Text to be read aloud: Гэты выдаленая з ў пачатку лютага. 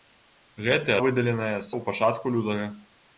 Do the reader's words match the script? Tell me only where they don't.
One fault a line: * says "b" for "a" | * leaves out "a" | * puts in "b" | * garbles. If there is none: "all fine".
all fine